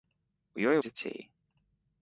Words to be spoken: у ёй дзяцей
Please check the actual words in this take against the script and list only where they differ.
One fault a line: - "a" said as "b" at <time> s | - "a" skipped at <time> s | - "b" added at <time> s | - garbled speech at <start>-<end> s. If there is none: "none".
none